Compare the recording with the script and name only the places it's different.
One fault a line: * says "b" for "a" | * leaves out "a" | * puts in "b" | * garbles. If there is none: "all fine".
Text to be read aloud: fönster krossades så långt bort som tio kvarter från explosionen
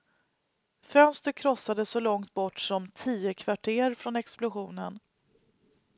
all fine